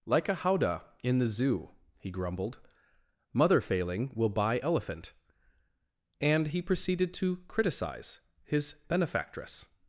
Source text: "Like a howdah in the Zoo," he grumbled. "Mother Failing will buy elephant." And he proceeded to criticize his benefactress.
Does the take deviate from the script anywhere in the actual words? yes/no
no